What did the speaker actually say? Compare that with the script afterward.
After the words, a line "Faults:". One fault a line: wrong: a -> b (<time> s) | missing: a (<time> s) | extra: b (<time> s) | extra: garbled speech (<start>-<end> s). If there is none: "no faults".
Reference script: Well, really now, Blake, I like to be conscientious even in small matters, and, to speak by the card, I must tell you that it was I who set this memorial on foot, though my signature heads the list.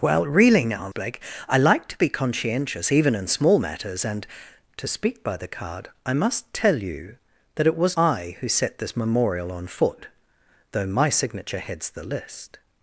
Well, really now, Blake, I like to be conscientious even in small matters, and, to speak by the card, I must tell you that it was I who set this memorial on foot, though my signature heads the list.
Faults:
no faults